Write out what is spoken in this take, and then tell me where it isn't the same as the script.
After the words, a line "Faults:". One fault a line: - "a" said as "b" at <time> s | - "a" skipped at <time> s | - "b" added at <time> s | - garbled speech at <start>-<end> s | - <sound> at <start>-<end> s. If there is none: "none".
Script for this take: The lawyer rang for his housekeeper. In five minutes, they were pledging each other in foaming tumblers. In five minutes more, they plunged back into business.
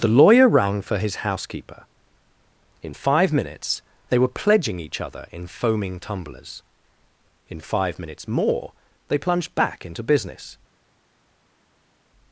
The lawyer rang for his housekeeper. In five minutes, they were pledging each other in foaming tumblers. In five minutes more, they plunged back into business.
Faults:
none